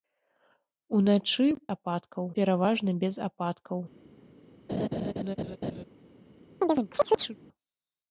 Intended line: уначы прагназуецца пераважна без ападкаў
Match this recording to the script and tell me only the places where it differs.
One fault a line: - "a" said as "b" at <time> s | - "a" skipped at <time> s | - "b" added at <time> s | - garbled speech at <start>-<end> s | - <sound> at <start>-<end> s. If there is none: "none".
- "прагназуецца" said as "ападкаў" at 1.8 s
- laugh at 4.7-5.8 s
- chirp at 6.6-7.4 s